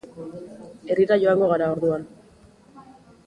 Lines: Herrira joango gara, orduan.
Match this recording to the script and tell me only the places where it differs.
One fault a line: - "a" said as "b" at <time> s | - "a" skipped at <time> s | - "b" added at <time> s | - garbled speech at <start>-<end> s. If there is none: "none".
none